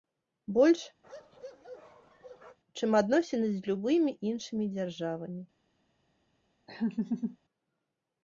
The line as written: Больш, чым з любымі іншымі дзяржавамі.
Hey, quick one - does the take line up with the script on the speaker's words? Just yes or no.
no